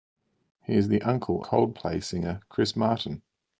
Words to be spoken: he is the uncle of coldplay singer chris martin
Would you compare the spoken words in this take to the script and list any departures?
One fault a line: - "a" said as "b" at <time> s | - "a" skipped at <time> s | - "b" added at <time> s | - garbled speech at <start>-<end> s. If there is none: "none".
- "of" skipped at 1.4 s